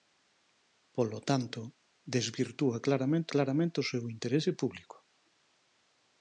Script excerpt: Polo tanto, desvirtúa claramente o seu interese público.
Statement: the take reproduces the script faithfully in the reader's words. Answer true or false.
false